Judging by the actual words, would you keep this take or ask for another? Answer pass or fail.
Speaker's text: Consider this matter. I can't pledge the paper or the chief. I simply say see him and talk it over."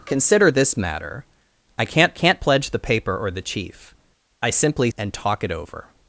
fail